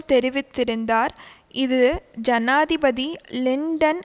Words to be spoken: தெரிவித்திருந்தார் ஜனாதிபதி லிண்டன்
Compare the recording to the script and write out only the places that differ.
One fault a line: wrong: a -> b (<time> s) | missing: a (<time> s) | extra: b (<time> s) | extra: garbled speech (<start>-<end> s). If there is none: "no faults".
extra: இது (1.5 s)